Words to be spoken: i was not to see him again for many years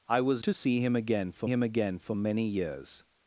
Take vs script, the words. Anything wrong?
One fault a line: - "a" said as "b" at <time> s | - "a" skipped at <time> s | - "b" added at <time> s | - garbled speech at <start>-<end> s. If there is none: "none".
- "not" skipped at 0.4 s
- "him again for" added at 1.5 s